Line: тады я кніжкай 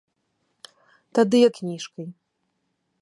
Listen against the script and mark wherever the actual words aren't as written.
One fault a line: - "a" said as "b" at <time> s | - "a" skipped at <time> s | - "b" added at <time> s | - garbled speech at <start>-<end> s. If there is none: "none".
none